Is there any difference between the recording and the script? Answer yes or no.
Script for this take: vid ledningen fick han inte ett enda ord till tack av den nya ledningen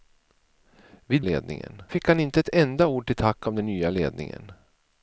no